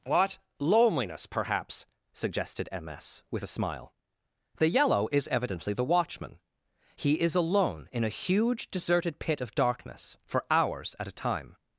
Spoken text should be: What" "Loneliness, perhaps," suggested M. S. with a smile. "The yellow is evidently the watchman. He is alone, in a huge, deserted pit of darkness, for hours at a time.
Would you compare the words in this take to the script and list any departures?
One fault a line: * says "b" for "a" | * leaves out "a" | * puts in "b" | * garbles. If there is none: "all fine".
all fine